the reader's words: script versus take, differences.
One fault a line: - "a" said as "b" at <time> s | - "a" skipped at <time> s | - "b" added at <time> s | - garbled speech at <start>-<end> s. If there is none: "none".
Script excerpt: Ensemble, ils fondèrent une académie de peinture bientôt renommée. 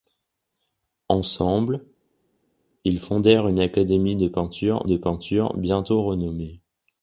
- "de peinture" added at 4.8 s